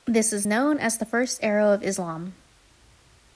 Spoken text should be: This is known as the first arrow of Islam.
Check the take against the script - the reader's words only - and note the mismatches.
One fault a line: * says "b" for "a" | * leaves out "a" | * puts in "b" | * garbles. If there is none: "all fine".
all fine